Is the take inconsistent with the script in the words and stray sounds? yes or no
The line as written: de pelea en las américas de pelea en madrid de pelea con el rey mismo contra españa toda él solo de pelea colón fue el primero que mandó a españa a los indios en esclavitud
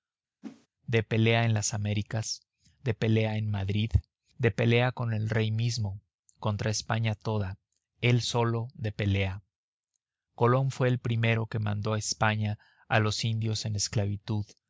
yes